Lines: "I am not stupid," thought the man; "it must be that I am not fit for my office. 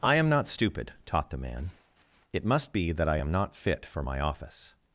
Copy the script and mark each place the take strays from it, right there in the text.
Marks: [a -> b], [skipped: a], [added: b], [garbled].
"I am not stupid," [thought -> taught] the man; "it must be that I am not fit for my office.